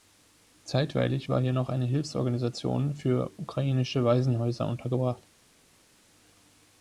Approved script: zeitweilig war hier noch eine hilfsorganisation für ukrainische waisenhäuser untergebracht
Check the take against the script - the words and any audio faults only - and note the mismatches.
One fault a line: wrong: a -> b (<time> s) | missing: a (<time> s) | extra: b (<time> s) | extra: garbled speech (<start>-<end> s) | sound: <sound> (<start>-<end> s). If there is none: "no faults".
no faults